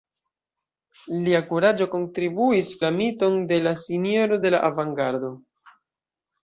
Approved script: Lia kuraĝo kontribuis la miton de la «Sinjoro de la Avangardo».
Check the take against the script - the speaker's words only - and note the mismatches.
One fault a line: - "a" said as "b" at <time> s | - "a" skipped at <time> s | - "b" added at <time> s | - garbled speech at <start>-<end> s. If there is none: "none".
none